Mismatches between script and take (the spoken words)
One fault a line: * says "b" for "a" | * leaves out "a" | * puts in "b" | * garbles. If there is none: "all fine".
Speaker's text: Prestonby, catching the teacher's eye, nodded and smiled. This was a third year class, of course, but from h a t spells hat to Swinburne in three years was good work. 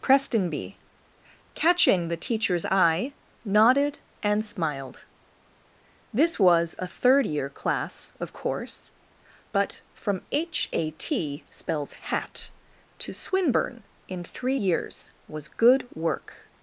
all fine